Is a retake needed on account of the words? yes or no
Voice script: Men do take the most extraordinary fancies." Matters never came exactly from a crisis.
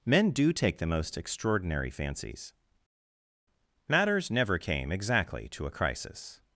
yes